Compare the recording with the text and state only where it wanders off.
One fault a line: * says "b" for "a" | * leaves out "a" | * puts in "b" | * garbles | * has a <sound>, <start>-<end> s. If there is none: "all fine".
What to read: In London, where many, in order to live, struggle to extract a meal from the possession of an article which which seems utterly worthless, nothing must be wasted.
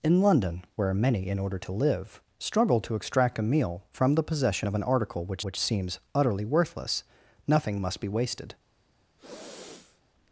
* has a sniff, 9.2-10.0 s